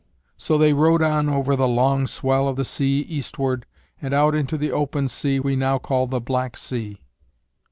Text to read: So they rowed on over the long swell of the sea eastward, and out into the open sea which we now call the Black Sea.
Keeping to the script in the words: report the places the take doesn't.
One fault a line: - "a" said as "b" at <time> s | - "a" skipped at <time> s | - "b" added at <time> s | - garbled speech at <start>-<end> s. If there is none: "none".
- "which" skipped at 5.4 s